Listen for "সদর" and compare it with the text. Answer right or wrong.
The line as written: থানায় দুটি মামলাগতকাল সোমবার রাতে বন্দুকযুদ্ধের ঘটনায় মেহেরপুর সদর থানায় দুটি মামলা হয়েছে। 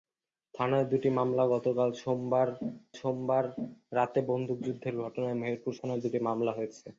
wrong